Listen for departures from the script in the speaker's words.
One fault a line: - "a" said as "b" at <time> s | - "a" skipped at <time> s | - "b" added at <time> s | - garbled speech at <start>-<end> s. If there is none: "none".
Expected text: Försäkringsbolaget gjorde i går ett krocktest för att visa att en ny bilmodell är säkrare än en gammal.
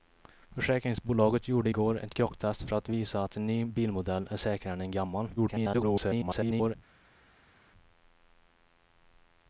- garbled speech at 5.4-6.8 s